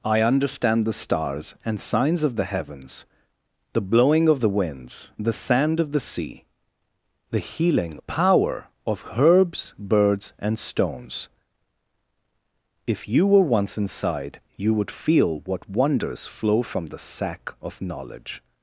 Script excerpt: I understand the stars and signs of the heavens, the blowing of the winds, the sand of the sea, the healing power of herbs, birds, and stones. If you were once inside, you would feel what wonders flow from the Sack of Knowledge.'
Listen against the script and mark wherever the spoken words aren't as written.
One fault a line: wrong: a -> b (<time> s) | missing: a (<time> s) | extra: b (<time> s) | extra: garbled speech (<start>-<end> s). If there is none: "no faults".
no faults